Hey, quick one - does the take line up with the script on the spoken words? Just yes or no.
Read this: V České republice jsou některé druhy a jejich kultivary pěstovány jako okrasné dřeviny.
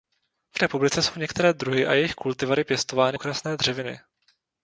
no